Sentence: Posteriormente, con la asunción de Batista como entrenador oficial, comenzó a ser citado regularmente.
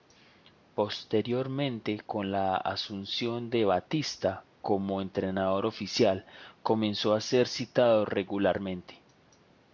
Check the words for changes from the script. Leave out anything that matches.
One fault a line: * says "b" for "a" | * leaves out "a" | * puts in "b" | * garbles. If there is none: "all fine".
all fine